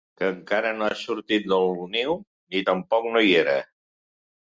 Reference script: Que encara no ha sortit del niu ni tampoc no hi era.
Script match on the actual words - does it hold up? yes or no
yes